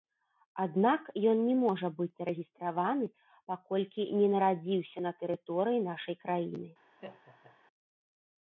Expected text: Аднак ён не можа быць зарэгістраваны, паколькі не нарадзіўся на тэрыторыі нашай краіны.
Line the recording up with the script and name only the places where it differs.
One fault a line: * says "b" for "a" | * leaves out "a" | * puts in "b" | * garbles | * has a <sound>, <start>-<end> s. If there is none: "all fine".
* has a laugh, 7.0-7.6 s